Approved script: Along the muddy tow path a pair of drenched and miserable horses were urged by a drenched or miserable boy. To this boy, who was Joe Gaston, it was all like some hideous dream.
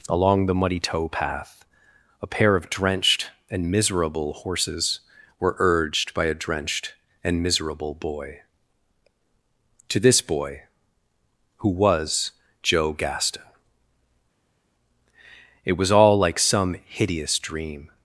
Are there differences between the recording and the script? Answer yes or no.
yes